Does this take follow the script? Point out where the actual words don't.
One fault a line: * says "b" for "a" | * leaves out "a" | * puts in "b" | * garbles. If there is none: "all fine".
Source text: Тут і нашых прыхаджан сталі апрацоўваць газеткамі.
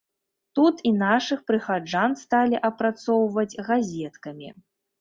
all fine